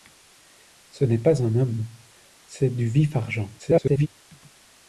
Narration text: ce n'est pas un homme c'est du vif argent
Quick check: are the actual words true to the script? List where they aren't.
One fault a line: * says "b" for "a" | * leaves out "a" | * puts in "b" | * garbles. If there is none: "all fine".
* garbles